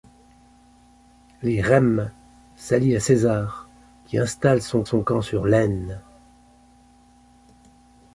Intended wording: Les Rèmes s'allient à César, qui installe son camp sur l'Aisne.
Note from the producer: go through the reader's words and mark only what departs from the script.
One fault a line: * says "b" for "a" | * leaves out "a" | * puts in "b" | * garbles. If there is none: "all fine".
* puts in "son"